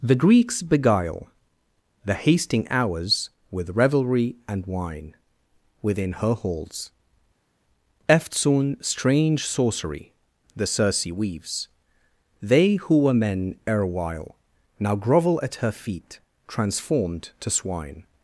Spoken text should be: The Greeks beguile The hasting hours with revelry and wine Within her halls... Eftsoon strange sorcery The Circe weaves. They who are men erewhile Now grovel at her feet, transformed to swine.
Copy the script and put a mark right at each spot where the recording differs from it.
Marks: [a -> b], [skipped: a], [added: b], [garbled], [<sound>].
The Greeks beguile The hasting hours with revelry and wine Within her halls... Eftsoon strange sorcery The Circe weaves. They who [are -> were] men erewhile Now grovel at her feet, transformed to swine.